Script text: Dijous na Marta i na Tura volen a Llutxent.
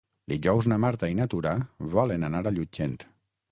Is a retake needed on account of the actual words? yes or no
yes